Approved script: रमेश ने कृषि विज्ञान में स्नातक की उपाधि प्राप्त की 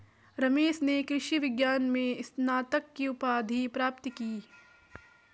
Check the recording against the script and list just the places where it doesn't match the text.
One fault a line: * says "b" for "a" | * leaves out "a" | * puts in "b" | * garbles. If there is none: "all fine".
all fine